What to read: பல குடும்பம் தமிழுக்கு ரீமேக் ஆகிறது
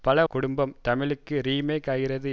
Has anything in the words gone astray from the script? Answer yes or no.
no